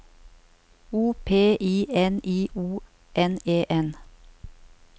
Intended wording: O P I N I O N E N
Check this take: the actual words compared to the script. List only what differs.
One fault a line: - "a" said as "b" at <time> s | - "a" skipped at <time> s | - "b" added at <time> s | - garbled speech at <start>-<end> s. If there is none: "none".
none